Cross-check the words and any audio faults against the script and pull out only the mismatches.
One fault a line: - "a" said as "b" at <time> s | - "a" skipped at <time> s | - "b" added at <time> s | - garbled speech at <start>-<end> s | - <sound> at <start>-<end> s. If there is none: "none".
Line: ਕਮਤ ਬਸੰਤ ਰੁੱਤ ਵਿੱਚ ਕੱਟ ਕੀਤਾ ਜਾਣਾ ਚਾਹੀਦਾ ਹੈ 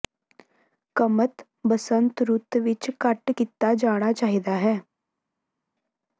none